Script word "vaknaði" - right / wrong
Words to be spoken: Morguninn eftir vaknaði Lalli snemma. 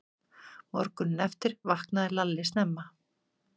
right